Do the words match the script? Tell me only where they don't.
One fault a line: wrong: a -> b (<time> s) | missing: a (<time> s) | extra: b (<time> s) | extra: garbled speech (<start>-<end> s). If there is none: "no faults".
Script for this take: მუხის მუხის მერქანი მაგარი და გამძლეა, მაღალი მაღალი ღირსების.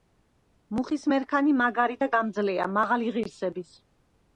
missing: მუხის (1.1 s)
missing: მაღალი (3.2 s)